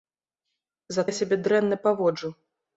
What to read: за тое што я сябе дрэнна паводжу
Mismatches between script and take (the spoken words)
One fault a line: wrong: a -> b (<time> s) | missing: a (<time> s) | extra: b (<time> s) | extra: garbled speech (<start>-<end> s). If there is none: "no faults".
missing: тое што (1.0 s)